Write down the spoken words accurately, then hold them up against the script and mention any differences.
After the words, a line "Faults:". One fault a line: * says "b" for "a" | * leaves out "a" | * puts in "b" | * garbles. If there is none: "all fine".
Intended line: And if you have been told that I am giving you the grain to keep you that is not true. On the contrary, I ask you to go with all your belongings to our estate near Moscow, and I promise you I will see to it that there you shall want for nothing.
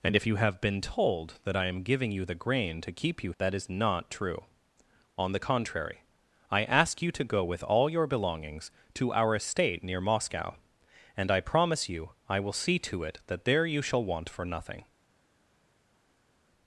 And if you have been told that I am giving you the grain to keep you that is not true. On the contrary, I ask you to go with all your belongings to our estate near Moscow, and I promise you I will see to it that there you shall want for nothing.
Faults:
all fine